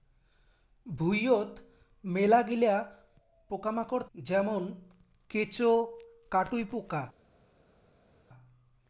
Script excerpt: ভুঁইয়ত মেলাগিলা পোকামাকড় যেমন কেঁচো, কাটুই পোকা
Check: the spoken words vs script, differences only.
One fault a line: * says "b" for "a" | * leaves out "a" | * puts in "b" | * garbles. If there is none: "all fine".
all fine